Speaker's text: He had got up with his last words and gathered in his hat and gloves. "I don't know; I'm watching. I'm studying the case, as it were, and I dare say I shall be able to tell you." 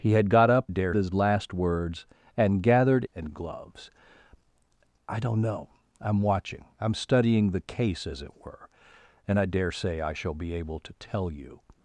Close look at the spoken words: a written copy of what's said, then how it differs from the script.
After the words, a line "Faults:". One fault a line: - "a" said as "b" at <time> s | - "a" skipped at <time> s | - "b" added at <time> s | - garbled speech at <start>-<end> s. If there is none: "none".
He had got up dare his last words and gathered and gloves. "I don't know; I'm watching. I'm studying the case, as it were, and I dare say I shall be able to tell you."
Faults:
- "with" said as "dare" at 0.7 s
- "in his hat" skipped at 3.0 s